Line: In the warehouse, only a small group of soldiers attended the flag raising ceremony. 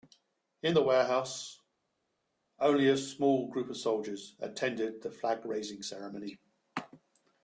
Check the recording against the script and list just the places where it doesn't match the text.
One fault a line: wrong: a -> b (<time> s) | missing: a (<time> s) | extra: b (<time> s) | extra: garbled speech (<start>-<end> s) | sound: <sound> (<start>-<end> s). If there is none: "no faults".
no faults